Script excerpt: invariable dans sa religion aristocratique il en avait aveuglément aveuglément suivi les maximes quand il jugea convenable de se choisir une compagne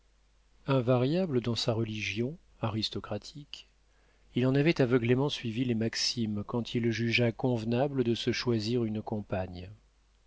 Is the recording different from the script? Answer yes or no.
yes